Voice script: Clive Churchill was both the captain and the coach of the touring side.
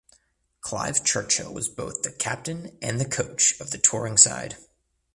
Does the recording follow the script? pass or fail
pass